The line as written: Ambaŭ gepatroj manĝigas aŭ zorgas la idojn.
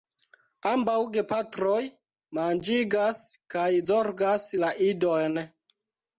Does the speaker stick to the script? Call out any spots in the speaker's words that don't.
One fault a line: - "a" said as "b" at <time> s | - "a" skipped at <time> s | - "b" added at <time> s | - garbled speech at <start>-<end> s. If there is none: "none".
- "aŭ" said as "kaj" at 3.6 s